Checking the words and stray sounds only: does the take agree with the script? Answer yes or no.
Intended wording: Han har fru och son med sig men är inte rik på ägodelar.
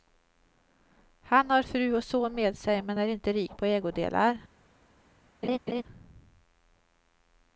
no